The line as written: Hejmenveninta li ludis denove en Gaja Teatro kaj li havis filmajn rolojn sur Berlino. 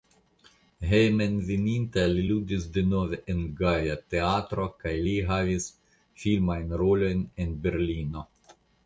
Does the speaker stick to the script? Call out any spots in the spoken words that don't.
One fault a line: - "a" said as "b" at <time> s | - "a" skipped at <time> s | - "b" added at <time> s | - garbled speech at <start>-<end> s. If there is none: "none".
- "sur" said as "en" at 7.4 s